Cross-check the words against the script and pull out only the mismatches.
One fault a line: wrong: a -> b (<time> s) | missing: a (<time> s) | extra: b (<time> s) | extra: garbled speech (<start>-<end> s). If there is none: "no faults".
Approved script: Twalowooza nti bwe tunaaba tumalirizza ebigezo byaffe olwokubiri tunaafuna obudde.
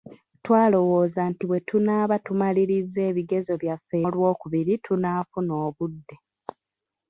no faults